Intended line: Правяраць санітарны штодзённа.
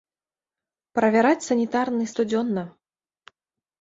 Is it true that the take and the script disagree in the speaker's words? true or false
false